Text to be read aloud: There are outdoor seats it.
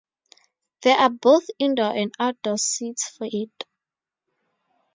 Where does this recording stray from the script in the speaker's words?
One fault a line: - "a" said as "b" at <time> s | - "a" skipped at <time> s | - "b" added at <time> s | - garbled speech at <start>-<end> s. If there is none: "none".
- "both indoor and" added at 1.1 s
- "for" added at 3.1 s